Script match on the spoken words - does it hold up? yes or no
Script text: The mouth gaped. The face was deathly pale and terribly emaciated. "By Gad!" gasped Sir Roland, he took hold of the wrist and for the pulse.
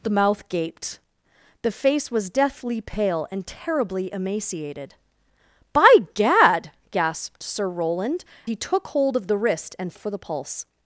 yes